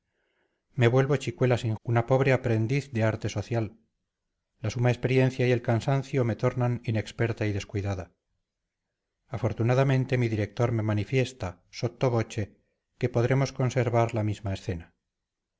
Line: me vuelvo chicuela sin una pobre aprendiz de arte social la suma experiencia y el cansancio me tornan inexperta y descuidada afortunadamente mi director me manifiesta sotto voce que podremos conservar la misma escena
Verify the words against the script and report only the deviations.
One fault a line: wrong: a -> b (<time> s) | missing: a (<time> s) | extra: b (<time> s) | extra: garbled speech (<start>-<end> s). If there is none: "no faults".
no faults